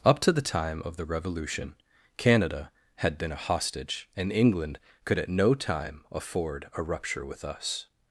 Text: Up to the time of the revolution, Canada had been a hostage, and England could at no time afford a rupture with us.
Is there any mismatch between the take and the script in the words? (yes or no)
no